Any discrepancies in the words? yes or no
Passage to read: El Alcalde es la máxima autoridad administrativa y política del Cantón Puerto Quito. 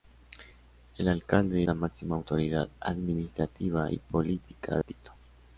yes